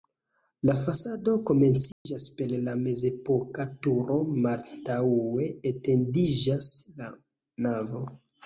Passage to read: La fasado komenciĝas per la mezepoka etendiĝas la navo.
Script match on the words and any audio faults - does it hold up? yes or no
no